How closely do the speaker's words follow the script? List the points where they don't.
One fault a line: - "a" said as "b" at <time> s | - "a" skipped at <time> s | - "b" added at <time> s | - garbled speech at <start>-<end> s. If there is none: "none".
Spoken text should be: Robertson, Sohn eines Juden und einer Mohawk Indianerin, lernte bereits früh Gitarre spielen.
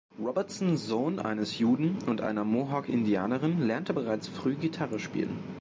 none